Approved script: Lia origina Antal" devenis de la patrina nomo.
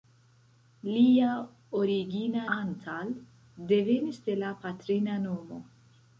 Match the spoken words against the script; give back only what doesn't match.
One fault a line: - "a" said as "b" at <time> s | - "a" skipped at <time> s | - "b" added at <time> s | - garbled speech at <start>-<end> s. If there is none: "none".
none